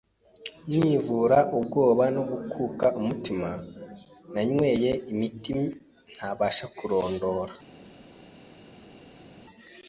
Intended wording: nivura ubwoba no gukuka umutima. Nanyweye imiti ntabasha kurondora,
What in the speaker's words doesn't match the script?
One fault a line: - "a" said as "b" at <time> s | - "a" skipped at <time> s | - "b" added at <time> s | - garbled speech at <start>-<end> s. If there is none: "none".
none